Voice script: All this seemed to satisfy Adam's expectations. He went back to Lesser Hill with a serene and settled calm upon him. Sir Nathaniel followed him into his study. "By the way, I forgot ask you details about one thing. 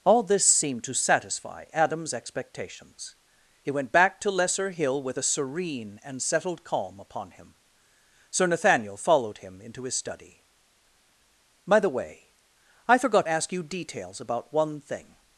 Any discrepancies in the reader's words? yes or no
no